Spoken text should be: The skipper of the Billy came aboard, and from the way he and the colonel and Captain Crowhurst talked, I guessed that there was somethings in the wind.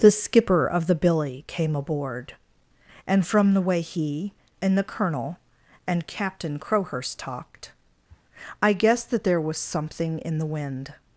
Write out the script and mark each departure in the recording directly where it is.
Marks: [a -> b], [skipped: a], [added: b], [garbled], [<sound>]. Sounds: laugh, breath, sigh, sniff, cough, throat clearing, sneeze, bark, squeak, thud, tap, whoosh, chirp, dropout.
The skipper of the Billy came aboard, and from the way he and the colonel and Captain Crowhurst talked, [sniff] I guessed that there was [somethings -> something] in the wind.